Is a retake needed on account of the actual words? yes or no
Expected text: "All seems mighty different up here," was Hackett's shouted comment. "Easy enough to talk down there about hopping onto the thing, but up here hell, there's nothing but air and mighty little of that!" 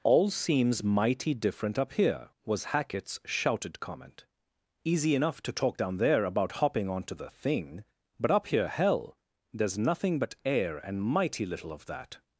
no